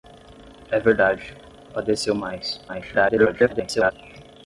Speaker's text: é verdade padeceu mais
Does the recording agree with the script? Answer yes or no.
no